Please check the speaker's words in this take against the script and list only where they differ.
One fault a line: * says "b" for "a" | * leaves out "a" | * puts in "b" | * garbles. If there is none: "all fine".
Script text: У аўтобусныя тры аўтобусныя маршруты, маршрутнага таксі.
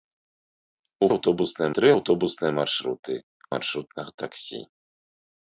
all fine